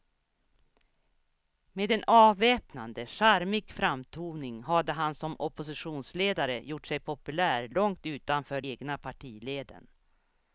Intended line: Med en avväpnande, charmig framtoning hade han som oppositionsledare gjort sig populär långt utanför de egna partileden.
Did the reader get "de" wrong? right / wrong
wrong